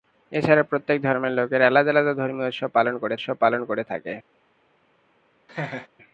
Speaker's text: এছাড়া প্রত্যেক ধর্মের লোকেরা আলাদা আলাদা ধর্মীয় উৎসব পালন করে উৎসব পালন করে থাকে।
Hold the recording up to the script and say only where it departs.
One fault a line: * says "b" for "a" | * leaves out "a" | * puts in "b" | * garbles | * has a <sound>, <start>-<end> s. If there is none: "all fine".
* has a laugh, 5.5-5.9 s